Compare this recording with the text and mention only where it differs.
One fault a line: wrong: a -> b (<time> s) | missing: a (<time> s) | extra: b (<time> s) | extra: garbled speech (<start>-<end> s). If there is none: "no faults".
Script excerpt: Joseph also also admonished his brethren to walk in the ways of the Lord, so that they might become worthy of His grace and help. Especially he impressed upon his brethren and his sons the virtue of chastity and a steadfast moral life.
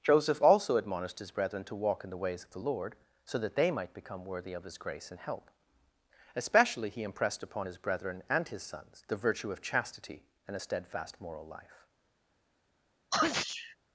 missing: also (0.8 s)